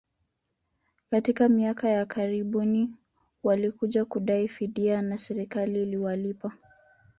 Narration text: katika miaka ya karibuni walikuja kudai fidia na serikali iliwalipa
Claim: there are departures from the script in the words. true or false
false